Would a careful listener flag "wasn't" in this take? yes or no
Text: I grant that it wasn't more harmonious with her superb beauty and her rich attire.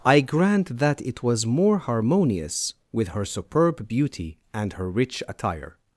yes